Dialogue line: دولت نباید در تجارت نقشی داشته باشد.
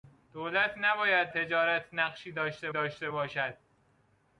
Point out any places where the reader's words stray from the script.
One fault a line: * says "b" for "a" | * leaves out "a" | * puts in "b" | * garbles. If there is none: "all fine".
* leaves out "در"
* puts in "داشته"